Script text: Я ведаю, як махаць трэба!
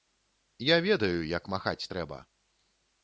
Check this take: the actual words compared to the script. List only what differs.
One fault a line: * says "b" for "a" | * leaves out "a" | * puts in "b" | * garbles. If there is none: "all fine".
all fine